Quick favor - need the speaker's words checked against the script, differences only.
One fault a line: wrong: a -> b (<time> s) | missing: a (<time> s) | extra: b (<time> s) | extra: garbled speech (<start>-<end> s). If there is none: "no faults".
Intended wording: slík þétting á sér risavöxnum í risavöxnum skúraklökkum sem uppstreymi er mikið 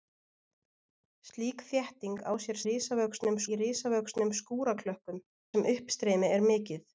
no faults